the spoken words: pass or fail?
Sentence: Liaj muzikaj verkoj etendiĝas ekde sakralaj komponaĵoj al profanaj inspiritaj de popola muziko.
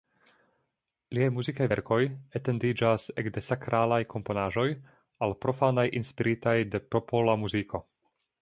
pass